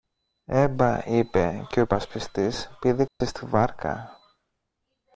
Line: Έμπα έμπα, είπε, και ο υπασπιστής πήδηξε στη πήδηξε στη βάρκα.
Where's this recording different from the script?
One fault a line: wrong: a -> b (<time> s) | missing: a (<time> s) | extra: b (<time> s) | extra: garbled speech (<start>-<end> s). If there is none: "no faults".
missing: έμπα (1.1 s)
missing: πήδηξε στη (3.4 s)